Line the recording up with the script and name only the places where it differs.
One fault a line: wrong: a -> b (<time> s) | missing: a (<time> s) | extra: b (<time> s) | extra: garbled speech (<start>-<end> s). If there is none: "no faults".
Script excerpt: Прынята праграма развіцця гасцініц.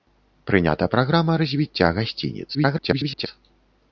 extra: garbled speech (2.5-3.3 s)